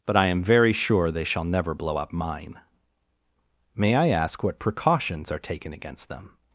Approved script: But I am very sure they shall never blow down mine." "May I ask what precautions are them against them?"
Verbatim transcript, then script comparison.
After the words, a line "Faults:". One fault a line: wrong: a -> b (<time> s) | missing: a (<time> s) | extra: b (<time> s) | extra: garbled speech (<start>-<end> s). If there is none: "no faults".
But I am very sure they shall never blow up mine." "May I ask what precautions are taken against them?"
Faults:
wrong: down -> up (2.0 s)
wrong: them -> taken (5.4 s)